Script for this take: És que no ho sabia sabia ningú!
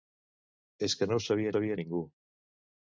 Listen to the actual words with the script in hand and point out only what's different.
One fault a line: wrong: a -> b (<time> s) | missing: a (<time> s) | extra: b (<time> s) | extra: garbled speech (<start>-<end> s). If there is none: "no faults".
no faults